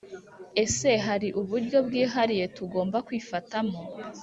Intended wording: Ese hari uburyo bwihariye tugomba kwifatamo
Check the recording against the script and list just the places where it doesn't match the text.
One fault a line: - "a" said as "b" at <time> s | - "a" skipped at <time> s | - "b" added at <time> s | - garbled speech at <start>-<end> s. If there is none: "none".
none